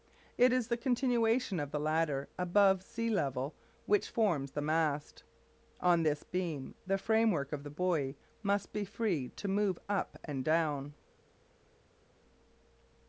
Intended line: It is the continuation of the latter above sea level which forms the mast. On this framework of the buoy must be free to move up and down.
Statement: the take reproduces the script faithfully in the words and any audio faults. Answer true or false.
false